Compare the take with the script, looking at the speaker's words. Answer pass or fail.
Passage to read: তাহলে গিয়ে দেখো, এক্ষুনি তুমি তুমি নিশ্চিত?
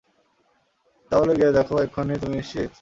fail